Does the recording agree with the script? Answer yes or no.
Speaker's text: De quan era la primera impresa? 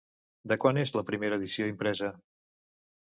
no